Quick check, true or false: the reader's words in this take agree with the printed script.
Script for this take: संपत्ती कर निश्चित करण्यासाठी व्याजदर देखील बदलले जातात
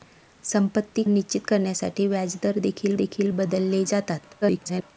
false